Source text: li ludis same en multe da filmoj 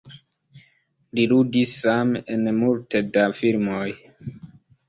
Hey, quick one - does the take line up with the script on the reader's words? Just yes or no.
yes